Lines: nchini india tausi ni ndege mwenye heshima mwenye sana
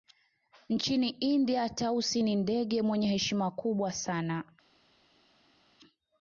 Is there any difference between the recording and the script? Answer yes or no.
yes